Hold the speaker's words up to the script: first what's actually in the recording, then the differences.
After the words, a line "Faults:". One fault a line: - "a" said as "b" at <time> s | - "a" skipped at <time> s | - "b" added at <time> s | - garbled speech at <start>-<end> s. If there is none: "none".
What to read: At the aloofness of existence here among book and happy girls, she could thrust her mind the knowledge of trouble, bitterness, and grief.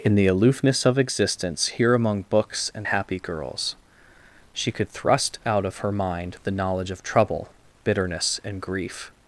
In the aloofness of existence here among books and happy girls, she could thrust out of her mind the knowledge of trouble, bitterness, and grief.
Faults:
- "At" said as "In" at 0.0 s
- "book" said as "books" at 2.3 s
- "out of" added at 5.4 s